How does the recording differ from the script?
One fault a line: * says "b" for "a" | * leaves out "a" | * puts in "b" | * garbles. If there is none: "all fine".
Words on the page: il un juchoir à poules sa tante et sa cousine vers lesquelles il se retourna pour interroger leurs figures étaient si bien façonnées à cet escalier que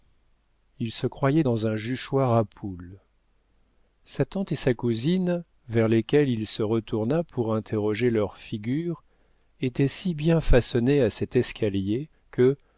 * puts in "se croyait dans"